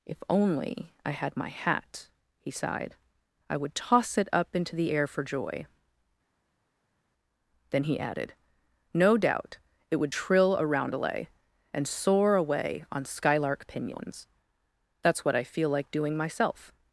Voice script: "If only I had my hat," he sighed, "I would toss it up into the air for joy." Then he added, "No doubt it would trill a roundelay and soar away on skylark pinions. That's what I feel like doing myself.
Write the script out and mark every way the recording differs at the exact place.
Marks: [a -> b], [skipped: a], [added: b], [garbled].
"If only I had my hat," he sighed, "I would toss it up into the air for joy." Then he added, "No doubt it would trill a roundelay and soar away on skylark pinions. That's what I feel like doing myself.